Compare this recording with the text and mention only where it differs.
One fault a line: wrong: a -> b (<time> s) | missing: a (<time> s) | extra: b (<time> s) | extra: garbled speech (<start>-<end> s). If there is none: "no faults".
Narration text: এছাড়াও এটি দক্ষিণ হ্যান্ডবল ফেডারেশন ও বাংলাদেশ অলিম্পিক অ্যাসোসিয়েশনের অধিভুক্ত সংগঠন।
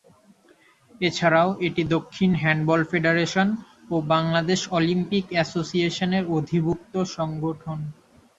no faults